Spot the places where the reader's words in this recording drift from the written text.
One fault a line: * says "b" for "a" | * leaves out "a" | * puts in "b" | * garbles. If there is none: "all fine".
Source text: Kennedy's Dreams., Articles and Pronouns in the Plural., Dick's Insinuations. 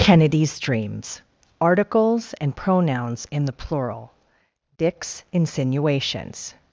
all fine